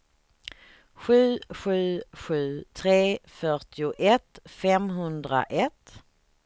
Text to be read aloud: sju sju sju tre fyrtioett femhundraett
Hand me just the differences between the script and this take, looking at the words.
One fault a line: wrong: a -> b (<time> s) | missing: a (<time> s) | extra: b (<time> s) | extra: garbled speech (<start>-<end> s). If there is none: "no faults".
no faults